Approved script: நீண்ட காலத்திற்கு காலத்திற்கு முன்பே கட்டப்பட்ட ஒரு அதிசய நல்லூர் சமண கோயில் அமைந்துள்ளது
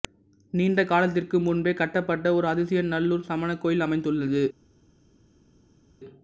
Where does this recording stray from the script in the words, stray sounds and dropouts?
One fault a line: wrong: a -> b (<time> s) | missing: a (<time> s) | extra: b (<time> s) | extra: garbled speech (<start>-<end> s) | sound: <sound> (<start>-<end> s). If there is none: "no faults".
missing: காலத்திற்கு (1.4 s)